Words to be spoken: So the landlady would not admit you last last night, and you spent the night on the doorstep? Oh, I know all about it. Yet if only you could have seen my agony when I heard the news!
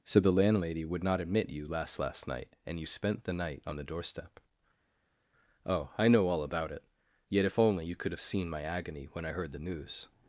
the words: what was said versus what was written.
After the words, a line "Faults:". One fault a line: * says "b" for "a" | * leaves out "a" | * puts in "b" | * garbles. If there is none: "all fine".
So the landlady would not admit you last last night, and you spent the night on the doorstep? Oh, I know all about it. Yet if only you could have seen my agony when I heard the news!
Faults:
all fine